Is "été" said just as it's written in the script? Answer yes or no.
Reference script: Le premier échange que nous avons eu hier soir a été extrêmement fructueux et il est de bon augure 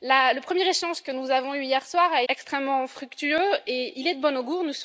no